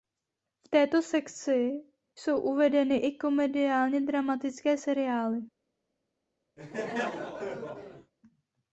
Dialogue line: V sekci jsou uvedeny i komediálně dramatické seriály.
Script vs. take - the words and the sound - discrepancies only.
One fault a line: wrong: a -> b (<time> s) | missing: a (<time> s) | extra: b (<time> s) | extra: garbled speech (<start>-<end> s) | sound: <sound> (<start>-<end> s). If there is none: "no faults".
extra: této (0.7 s)
sound: laugh (6.6-8.1 s)